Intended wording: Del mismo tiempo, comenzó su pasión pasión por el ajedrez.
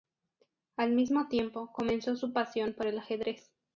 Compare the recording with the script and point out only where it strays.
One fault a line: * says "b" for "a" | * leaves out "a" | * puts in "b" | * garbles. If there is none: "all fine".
* says "Al" for "Del"
* leaves out "pasión"